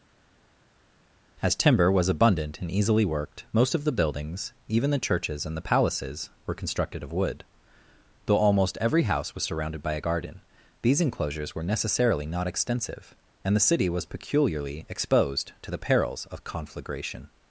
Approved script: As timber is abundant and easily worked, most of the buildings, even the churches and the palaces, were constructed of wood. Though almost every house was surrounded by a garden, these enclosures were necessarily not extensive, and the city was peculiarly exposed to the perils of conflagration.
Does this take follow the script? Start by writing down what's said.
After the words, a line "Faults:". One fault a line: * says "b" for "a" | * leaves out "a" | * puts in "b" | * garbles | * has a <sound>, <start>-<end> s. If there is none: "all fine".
As timber was abundant and easily worked, most of the buildings, even the churches and the palaces, were constructed of wood. Though almost every house was surrounded by a garden, these enclosures were necessarily not extensive, and the city was peculiarly exposed to the perils of conflagration.
Faults:
* says "was" for "is"